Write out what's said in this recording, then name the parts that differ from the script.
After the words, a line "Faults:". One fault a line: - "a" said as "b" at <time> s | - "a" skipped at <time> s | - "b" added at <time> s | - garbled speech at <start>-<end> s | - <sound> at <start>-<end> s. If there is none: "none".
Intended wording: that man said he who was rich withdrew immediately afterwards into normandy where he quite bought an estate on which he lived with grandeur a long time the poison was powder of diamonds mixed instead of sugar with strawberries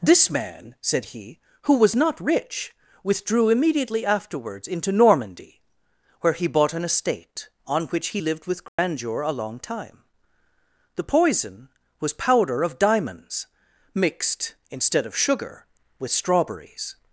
this man said he who was not rich withdrew immediately afterwards into normandy where he bought an estate on which he lived with grandeur a long time the poison was powder of diamonds mixed instead of sugar with strawberries
Faults:
- "that" said as "this" at 0.0 s
- "not" added at 1.9 s
- "quite" skipped at 6.5 s
- dropout at 8.7-8.8 s